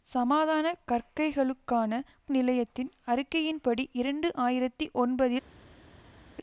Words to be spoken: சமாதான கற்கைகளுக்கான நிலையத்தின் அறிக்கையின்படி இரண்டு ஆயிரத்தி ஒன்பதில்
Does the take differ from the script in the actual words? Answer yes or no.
no